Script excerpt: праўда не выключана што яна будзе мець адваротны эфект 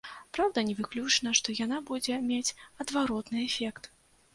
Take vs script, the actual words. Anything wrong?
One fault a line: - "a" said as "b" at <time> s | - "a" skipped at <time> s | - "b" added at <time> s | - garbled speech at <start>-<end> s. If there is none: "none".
none